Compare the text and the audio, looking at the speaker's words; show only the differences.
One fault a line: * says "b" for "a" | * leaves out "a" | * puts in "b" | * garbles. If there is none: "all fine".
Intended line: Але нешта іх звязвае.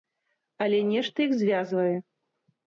all fine